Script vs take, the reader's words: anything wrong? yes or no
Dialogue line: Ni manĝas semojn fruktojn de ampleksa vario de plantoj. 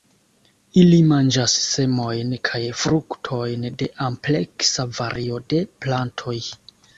yes